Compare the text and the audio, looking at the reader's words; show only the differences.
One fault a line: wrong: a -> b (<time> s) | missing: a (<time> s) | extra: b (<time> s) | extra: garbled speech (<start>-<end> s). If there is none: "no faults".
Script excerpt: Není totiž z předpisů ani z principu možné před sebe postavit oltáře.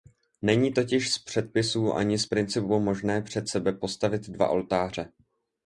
extra: dva (4.3 s)